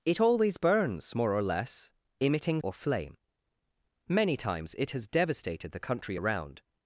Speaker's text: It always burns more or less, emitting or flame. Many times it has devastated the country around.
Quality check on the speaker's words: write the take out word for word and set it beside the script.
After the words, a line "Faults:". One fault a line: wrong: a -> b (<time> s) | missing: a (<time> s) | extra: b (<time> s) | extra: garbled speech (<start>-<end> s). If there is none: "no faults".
It always burns more or less, emitting or flame. Many times it has devastated the country around.
Faults:
no faults